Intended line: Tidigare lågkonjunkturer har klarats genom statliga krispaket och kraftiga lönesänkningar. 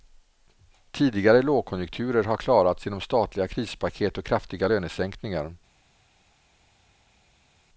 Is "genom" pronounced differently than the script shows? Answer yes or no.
no